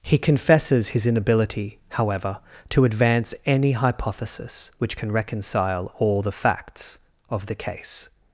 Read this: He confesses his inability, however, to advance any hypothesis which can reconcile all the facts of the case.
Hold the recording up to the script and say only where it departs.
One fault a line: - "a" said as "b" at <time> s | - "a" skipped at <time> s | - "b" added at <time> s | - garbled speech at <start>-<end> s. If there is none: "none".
none